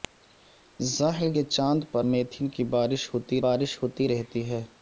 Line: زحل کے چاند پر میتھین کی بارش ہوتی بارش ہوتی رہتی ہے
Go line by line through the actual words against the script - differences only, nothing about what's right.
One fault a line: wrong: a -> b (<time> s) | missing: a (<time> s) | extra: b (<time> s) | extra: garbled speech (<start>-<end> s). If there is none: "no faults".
no faults